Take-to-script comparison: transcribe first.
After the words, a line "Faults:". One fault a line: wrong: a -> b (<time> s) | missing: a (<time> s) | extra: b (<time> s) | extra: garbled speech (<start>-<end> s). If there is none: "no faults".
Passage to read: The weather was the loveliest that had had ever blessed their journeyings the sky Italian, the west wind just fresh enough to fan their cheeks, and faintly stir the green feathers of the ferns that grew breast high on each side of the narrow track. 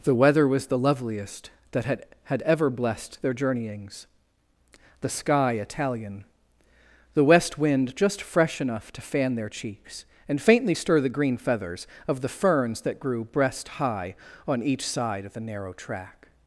The weather was the loveliest that had had ever blessed their journeyings the sky Italian, the west wind just fresh enough to fan their cheeks, and faintly stir the green feathers of the ferns that grew breast high on each side of the narrow track.
Faults:
no faults